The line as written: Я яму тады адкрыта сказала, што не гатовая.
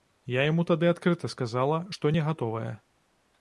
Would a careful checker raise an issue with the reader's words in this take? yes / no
no